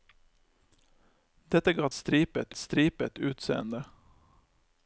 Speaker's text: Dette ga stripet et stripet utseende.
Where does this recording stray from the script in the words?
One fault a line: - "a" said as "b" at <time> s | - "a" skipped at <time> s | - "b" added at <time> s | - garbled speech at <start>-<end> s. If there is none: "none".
none